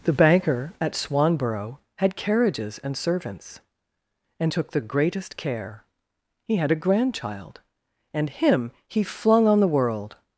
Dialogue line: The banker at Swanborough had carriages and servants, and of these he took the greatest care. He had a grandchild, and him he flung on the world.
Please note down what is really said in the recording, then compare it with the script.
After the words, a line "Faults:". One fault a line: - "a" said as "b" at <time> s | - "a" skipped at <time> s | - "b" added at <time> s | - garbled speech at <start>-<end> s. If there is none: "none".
The banker at Swanborough had carriages and servants, and took the greatest care. He had a grandchild, and him he flung on the world.
Faults:
- "of these he" skipped at 4.5 s